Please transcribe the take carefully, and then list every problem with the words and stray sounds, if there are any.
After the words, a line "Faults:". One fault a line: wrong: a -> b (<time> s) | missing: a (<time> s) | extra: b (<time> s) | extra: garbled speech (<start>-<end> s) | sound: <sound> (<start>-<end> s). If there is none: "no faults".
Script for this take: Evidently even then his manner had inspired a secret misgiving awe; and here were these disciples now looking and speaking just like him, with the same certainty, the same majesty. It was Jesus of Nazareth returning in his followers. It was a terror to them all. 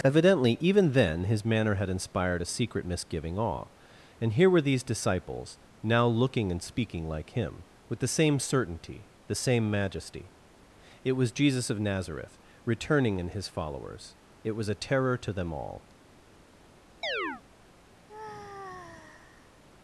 Evidently even then his manner had inspired a secret misgiving awe; and here were these disciples now looking and speaking like him, with the same certainty, the same majesty. It was Jesus of Nazareth returning in his followers. It was a terror to them all.
Faults:
missing: just (7.1 s)
sound: chirp (17.0-17.4 s)
sound: sigh (18.1-19.6 s)